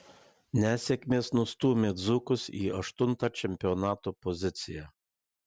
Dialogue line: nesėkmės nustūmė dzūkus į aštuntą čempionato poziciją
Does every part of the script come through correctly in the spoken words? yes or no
yes